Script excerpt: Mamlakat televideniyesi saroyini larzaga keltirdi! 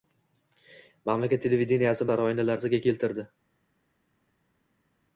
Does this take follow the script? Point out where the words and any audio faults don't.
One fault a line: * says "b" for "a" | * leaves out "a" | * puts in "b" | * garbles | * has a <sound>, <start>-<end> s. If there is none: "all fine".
all fine